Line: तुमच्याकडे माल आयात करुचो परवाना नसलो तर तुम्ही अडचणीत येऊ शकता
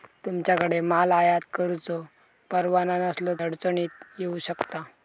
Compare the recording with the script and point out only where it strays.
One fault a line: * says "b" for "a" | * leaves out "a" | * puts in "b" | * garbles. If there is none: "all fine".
* leaves out "तर तुम्ही"